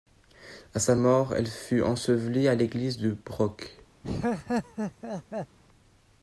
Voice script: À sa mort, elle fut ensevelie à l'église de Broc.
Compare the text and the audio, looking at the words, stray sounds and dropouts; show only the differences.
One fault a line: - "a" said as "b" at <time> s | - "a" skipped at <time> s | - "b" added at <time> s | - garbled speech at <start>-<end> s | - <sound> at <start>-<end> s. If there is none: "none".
- laugh at 4.0-5.6 s